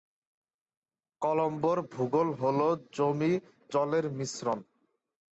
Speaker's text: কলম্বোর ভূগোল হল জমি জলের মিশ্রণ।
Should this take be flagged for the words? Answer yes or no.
no